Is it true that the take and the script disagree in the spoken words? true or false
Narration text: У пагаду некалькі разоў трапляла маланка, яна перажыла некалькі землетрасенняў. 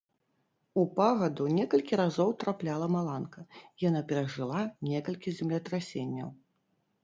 false